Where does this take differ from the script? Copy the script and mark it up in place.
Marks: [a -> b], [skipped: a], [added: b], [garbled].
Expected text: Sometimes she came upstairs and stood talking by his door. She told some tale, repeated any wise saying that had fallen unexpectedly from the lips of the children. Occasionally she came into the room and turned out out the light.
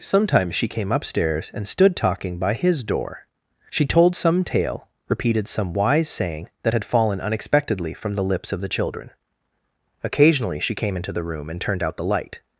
Sometimes she came upstairs and stood talking by his door. She told some tale, repeated [any -> some] wise saying that had fallen unexpectedly from the lips of the children. Occasionally she came into the room and turned out [skipped: out] the light.